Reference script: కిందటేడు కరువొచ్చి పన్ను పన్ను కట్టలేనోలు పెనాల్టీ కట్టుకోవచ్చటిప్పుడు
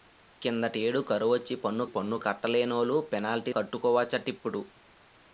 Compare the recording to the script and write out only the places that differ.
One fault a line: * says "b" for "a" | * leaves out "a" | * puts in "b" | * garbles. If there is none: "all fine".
all fine